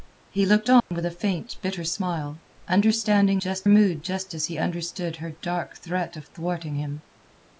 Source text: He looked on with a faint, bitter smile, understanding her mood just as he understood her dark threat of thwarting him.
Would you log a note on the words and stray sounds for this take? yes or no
yes